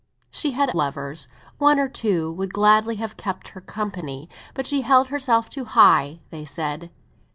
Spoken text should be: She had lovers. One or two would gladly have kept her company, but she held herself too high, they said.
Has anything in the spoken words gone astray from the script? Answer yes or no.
no